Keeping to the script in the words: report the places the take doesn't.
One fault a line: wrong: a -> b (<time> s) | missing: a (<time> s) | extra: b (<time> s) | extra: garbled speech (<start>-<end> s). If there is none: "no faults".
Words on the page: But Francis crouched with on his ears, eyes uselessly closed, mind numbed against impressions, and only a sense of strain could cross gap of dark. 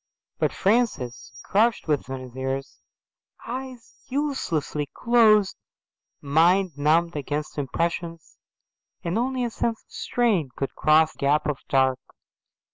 no faults